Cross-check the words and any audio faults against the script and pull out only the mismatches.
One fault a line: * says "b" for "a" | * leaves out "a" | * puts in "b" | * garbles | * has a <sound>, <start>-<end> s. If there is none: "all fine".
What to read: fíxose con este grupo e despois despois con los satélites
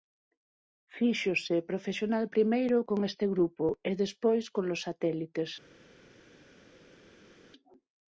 * puts in "profesional primeiro"
* leaves out "despois"